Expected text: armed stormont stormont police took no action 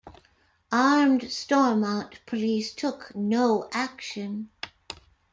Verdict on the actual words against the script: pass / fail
fail